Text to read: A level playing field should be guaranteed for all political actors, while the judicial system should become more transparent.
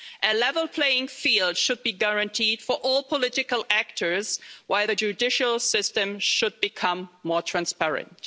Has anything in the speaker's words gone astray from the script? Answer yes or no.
no